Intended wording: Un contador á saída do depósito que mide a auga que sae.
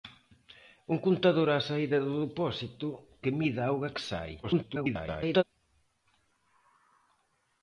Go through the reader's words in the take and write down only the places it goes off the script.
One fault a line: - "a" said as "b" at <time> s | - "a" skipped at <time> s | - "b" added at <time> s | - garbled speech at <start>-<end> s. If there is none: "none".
- garbled speech at 4.4-5.4 s